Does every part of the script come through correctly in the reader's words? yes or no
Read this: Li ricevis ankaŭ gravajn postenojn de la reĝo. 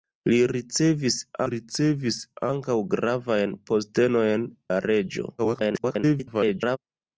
no